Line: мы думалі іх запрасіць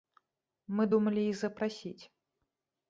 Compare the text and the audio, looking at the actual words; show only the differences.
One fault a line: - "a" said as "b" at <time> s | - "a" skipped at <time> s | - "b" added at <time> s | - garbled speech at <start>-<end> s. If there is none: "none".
none